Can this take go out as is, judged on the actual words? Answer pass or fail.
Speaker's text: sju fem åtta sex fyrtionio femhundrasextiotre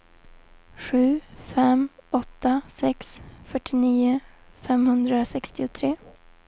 pass